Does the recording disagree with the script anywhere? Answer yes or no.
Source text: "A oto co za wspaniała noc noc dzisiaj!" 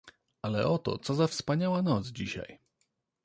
yes